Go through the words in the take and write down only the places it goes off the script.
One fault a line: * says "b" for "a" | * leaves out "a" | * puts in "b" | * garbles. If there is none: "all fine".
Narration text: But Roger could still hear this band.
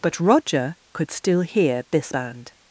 all fine